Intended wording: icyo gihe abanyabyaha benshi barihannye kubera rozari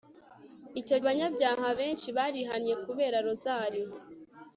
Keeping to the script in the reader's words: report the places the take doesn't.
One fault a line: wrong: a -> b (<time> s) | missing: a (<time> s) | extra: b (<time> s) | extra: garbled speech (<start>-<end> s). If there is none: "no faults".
missing: gihe (1.0 s)